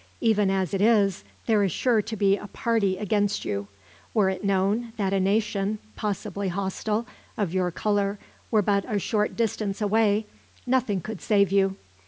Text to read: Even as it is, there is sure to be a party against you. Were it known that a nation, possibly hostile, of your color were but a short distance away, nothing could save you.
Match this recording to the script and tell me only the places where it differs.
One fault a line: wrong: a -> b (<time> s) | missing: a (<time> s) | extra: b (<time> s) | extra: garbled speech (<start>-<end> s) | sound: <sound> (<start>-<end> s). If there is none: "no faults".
no faults